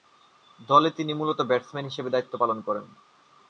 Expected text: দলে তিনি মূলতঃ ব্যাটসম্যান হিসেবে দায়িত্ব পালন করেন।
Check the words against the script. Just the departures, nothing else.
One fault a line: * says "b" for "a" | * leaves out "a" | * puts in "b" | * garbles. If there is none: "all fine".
all fine